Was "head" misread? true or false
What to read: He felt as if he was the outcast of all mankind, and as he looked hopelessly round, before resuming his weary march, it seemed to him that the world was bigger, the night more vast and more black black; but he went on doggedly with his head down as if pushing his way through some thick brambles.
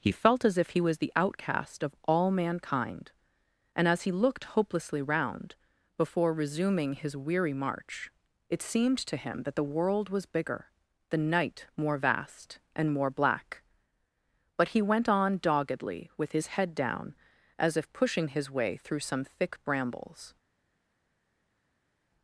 false